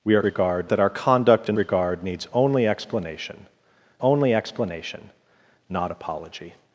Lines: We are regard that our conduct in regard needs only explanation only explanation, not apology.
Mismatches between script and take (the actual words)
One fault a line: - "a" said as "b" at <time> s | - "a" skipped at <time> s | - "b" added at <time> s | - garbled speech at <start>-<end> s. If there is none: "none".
none